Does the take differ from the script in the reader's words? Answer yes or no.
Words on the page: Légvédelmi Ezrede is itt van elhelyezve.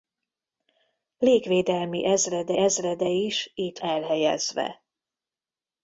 yes